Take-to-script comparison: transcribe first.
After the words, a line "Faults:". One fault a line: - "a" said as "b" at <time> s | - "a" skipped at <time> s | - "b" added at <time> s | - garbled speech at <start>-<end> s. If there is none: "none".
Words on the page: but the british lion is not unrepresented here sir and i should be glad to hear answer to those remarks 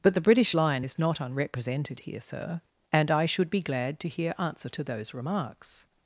but the british lion is not unrepresented here sir and i should be glad to hear answer to those remarks
Faults:
none